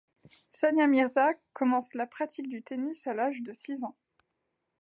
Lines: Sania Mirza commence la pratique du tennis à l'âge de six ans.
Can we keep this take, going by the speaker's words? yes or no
yes